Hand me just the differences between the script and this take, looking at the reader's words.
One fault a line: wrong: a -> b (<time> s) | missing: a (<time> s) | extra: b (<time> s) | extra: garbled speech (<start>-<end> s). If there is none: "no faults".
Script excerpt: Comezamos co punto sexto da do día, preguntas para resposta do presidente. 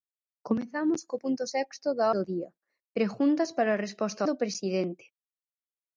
no faults